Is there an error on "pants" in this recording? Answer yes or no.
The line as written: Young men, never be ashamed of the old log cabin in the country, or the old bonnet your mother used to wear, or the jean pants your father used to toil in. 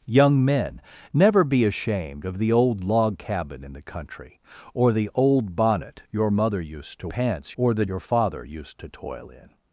yes